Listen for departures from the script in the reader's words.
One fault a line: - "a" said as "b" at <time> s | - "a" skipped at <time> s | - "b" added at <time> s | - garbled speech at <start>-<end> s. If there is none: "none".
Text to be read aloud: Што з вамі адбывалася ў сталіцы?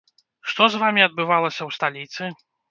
none